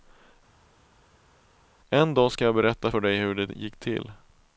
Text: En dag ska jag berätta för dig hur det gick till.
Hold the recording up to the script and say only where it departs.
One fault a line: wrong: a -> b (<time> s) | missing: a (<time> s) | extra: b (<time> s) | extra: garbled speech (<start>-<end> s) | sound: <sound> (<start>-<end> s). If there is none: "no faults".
no faults